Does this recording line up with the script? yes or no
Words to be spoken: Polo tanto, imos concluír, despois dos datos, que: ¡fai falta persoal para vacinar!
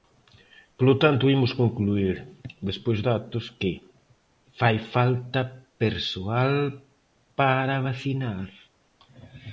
no